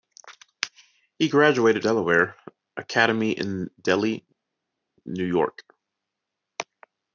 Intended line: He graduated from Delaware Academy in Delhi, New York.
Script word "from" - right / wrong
wrong